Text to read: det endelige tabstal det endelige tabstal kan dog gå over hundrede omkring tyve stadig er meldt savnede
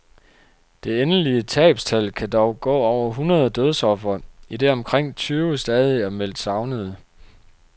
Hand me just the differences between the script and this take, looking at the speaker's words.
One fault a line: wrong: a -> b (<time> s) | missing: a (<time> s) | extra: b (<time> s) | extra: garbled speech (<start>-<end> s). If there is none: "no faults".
missing: det endelige tabstal (2.1 s)
extra: dødsofre idet (3.5 s)